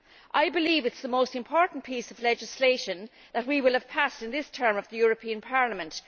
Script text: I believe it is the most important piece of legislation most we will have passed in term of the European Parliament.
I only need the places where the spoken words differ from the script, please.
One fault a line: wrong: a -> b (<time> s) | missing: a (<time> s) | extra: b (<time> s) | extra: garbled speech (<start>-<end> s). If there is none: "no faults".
wrong: most -> that (3.3 s)
extra: this (4.3 s)